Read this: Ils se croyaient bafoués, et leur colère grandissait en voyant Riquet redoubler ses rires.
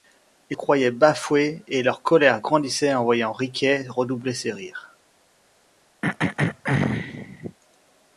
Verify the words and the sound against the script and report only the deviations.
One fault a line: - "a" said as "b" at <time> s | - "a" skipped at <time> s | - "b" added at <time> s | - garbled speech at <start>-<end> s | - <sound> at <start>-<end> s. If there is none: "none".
- "se" skipped at 0.6 s
- throat clearing at 6.0-7.6 s